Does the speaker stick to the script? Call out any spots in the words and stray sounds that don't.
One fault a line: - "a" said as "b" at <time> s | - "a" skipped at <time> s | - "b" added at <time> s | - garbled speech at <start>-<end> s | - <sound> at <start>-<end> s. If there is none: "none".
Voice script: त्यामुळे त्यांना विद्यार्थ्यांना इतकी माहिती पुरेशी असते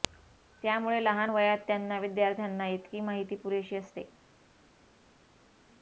- "लहान वयात" added at 1.0 s